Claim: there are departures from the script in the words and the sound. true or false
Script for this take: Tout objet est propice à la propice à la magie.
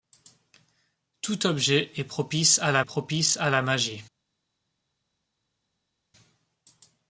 false